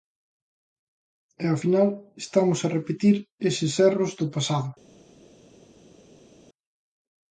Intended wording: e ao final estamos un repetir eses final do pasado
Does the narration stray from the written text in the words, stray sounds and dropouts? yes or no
yes